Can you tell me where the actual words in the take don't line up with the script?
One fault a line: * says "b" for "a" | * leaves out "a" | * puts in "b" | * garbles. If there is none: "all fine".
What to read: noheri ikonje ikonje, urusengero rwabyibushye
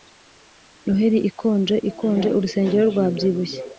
all fine